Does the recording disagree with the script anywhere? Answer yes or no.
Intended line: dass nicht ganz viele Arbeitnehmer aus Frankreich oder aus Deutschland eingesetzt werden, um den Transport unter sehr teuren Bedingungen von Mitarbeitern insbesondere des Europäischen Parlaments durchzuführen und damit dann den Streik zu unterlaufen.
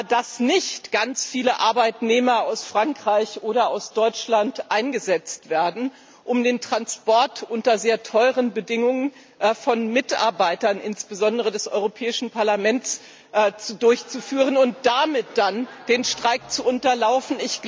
no